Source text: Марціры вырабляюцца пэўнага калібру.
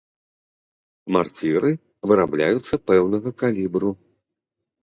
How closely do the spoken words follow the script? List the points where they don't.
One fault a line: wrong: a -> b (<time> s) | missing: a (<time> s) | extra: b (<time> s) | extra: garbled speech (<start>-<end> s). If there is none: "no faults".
no faults